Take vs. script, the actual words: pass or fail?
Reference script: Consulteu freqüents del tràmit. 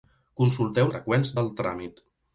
pass